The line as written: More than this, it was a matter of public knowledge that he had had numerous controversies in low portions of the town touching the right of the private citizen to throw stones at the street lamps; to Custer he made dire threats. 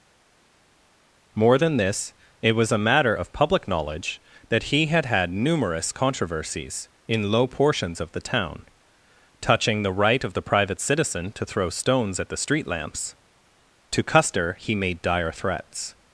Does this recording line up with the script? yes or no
yes